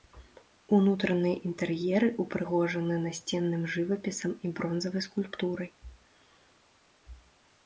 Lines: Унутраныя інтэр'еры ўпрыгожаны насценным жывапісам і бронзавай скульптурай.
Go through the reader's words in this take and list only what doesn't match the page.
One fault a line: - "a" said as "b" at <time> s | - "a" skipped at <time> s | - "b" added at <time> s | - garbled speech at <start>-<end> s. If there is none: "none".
none